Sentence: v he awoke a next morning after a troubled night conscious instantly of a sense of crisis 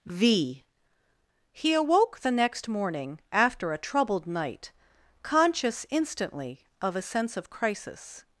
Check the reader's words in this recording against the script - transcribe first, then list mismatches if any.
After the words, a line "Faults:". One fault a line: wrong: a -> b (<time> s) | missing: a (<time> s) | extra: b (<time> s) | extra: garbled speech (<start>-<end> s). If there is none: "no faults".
v he awoke the next morning after a troubled night conscious instantly of a sense of crisis
Faults:
wrong: a -> the (2.2 s)